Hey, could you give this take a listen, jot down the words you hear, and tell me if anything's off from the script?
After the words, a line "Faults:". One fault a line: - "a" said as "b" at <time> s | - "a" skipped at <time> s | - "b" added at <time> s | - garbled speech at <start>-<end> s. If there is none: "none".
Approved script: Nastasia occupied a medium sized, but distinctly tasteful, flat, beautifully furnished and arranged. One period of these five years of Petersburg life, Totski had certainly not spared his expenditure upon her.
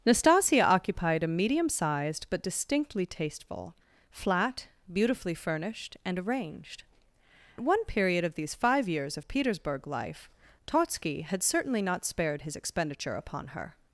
Nastasia occupied a medium sized, but distinctly tasteful, flat, beautifully furnished and arranged. One period of these five years of Petersburg life, Totski had certainly not spared his expenditure upon her.
Faults:
none